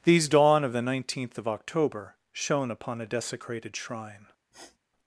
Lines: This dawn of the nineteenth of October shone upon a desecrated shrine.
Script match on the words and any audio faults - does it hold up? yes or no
no